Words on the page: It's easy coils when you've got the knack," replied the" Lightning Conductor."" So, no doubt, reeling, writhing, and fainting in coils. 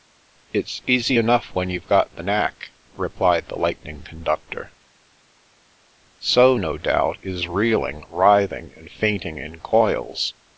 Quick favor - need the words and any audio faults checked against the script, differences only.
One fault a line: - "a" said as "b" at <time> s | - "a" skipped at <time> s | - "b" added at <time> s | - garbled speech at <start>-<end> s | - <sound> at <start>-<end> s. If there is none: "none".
- "coils" said as "enough" at 1.2 s
- "is" added at 7.2 s